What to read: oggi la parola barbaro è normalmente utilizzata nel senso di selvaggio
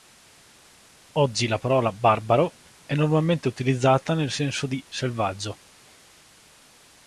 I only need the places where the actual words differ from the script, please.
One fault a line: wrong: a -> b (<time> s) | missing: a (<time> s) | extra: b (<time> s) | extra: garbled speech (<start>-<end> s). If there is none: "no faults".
no faults